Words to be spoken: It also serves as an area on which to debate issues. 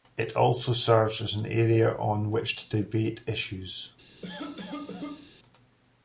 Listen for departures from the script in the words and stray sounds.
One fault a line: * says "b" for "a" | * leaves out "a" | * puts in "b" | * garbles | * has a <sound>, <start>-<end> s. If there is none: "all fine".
* has a cough, 4.2-5.3 s